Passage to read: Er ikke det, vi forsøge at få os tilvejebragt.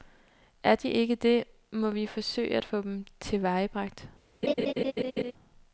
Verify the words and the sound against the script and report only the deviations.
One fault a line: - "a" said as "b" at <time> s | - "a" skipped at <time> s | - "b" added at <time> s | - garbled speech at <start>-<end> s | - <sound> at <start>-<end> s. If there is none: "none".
- "de" added at 0.8 s
- "må" added at 1.7 s
- "os" said as "dem" at 2.8 s
- laugh at 4.4-5.3 s